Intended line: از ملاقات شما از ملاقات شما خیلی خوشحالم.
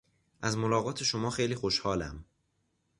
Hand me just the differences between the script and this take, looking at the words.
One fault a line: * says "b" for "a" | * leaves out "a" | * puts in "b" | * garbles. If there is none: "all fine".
* leaves out "از ملاقات شما"